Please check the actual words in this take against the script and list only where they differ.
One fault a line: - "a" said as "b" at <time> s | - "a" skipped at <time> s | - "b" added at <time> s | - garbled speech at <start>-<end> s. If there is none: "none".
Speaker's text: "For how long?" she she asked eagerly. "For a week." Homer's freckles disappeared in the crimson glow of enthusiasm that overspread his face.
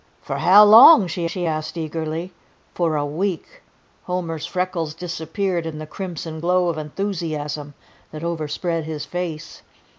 none